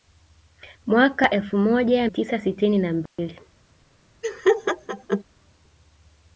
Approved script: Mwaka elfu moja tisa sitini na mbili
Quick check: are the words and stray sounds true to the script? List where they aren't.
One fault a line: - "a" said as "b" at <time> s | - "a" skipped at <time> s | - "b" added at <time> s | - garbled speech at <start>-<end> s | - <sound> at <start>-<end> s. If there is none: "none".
- dropout at 3.1-3.2 s
- laugh at 4.2-5.2 s